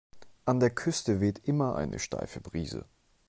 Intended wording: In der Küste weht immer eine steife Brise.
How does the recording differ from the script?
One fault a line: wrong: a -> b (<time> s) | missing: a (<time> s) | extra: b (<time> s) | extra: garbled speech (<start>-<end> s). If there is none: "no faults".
wrong: In -> An (0.5 s)